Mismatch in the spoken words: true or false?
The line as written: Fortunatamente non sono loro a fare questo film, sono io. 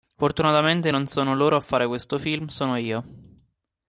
false